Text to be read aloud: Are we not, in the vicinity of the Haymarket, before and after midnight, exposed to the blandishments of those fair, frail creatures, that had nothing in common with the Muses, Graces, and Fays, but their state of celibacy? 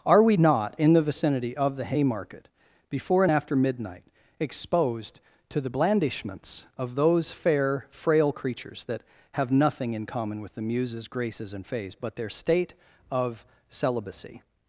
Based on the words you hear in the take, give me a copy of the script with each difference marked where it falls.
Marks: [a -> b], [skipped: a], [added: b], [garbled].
Are we not, in the vicinity of the Haymarket, before and after midnight, exposed to the blandishments of those fair, frail creatures, that [had -> have] nothing in common with the Muses, Graces, and Fays, but their state of celibacy?